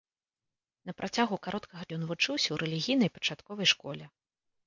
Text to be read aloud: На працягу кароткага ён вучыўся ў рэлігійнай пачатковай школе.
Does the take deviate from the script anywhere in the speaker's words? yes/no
no